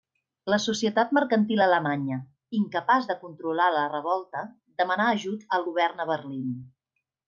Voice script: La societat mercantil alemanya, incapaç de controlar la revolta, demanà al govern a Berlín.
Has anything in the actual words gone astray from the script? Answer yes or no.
yes